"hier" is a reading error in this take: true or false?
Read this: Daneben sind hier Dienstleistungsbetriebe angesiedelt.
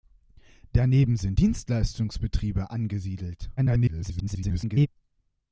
true